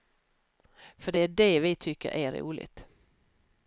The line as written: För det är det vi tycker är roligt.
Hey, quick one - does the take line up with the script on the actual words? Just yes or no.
yes